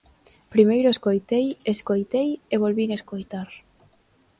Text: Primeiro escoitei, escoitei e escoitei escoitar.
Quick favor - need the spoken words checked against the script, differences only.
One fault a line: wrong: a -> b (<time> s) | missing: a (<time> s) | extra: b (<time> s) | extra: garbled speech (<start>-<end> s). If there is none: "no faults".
wrong: escoitei -> volvín (2.6 s)